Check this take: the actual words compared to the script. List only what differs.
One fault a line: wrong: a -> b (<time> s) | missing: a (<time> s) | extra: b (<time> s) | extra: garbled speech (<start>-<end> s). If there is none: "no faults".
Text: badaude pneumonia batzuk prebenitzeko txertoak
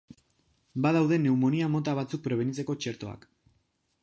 extra: mota (1.8 s)